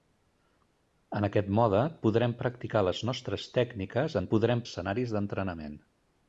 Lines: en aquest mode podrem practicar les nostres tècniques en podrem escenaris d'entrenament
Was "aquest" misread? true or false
false